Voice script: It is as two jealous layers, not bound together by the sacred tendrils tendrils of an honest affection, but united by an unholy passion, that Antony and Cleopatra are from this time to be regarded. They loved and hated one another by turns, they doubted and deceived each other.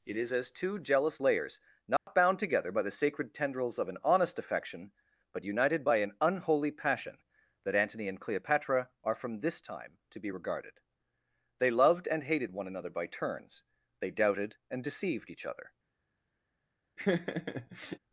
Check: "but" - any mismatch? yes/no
no